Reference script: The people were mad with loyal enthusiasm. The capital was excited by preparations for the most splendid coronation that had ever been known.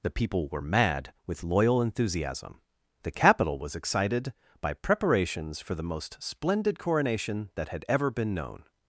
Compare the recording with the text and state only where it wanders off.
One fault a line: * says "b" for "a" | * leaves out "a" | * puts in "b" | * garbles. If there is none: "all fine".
all fine